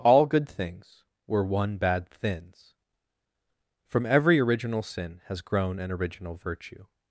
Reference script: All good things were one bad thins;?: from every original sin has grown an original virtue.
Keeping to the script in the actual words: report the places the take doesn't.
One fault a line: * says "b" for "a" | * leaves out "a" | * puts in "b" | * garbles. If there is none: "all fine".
all fine